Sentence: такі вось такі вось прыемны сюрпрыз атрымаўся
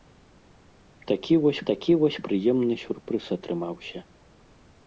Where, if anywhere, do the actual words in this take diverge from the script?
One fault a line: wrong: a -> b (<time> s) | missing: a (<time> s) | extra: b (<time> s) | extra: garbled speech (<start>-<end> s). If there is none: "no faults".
no faults